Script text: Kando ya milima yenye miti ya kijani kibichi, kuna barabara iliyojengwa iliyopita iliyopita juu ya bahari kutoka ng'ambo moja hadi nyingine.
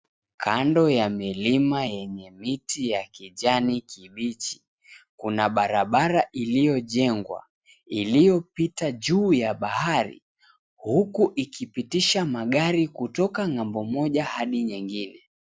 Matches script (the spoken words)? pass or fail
fail